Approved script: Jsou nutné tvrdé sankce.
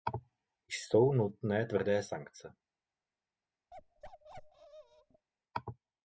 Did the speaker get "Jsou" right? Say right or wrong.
right